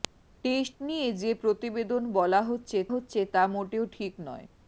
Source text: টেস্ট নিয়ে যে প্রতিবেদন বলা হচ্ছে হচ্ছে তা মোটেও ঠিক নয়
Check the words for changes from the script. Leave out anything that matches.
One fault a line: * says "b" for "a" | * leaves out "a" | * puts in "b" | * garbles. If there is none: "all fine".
all fine